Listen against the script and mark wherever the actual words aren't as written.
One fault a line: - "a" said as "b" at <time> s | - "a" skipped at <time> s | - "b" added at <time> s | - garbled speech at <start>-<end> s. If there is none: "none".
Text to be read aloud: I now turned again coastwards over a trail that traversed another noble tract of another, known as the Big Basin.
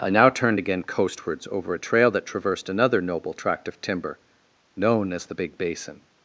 - "another" said as "timber" at 3.8 s